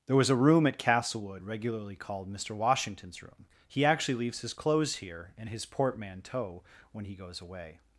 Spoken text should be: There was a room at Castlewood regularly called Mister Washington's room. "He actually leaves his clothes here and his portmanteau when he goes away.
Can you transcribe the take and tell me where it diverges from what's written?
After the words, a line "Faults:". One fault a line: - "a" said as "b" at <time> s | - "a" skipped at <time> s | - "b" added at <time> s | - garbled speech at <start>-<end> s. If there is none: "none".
There was a room at Castlewood regularly called Mister Washington's room. "He actually leaves his clothes here and his portmanteau when he goes away.
Faults:
none